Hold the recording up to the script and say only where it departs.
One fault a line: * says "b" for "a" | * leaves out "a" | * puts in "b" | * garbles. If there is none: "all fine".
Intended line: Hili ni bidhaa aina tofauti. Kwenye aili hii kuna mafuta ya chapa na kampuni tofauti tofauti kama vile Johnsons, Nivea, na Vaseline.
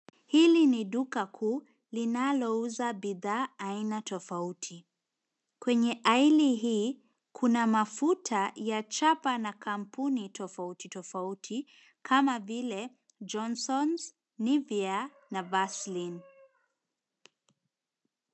* puts in "duka kuu linalouza"